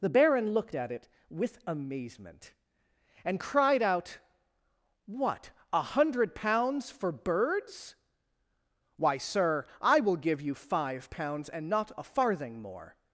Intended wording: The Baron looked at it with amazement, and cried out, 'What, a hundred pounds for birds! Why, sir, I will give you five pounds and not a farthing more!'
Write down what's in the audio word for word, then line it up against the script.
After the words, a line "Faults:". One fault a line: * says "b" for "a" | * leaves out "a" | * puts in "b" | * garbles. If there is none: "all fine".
The Baron looked at it with amazement, and cried out, 'What, a hundred pounds for birds! Why, sir, I will give you five pounds and not a farthing more!'
Faults:
all fine